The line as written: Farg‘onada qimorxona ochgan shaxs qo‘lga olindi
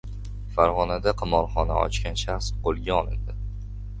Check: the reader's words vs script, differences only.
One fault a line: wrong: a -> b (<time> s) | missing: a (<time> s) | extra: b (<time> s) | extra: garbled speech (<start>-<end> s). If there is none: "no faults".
no faults